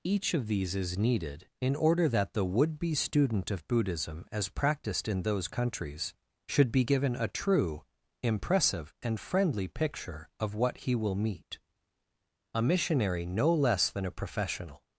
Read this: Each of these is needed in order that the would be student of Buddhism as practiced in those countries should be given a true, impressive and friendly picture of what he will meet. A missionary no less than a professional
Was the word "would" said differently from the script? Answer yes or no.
no